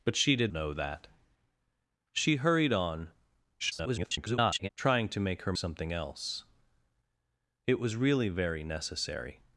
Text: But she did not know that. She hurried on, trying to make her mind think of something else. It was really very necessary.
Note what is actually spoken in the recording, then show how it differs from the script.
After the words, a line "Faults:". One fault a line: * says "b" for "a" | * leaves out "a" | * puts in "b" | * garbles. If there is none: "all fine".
But she did know that. She hurried on, [garbled] trying to make her something else. It was really very necessary.
Faults:
* leaves out "not"
* garbles
* leaves out "mind think of"